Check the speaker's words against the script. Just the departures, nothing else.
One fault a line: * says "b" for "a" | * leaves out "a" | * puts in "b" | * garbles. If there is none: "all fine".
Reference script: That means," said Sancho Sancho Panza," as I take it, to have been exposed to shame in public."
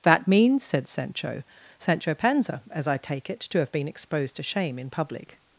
all fine